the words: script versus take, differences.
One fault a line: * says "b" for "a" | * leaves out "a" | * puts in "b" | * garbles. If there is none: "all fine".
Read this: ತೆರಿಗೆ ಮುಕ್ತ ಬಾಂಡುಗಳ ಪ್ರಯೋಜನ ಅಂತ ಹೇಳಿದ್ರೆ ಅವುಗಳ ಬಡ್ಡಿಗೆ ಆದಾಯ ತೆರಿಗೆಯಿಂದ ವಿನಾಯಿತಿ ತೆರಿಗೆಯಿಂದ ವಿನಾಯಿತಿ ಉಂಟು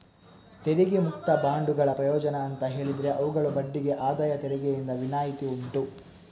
* leaves out "ತೆರಿಗೆಯಿಂದ ವಿನಾಯಿತಿ"